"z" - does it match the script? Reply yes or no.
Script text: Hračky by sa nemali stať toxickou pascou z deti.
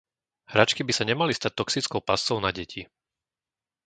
no